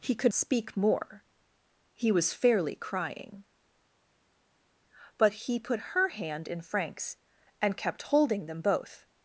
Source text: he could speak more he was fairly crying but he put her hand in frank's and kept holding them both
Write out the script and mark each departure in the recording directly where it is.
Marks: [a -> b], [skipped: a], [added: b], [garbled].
he could speak more he was fairly crying but he put her hand in frank's and kept holding them both